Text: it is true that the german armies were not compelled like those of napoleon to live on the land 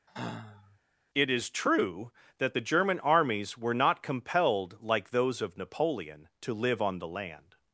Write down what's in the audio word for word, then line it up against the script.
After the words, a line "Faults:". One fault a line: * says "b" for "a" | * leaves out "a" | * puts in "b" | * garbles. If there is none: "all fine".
it is true that the german armies were not compelled like those of napoleon to live on the land
Faults:
all fine